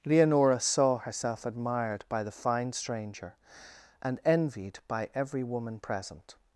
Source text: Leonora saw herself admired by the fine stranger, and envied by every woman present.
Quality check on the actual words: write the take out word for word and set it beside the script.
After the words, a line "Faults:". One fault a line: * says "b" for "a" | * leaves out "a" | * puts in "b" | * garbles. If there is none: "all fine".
Leonora saw herself admired by the fine stranger, and envied by every woman present.
Faults:
all fine